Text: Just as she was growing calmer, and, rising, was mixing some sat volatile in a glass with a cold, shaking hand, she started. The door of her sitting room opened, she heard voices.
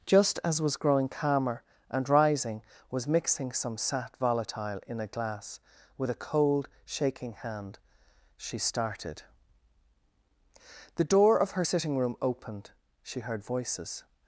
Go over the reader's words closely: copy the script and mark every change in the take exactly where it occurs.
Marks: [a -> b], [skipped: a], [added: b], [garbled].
Just as [skipped: she] was growing calmer, and, rising, was mixing some sat volatile in a glass with a cold, shaking hand, she started. The door of her sitting room opened, she heard voices.